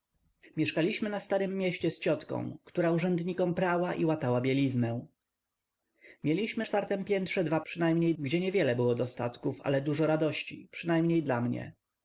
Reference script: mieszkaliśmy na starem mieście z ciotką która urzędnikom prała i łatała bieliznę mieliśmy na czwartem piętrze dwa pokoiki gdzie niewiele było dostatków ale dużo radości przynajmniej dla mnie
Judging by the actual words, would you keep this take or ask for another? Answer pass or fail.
fail